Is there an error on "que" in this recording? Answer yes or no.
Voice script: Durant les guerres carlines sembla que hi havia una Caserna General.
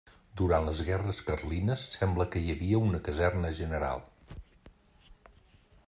no